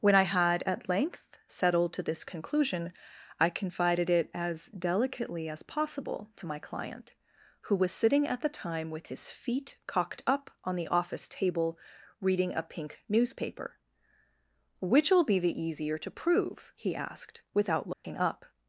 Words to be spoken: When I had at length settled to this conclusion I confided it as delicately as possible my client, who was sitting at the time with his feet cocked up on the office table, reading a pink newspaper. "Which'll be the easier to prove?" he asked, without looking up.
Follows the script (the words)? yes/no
no